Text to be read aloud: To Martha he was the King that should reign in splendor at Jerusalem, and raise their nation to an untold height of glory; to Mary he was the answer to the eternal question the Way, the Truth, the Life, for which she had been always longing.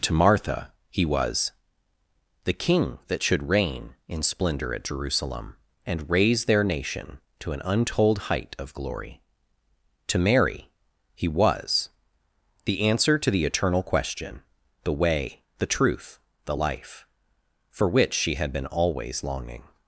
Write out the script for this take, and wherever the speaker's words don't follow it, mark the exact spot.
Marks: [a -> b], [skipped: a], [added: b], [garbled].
To Martha he was the King that should reign in splendor at Jerusalem, and raise their nation to an untold height of glory; to Mary he was the answer to the eternal question the Way, the Truth, the Life, for which she had been always longing.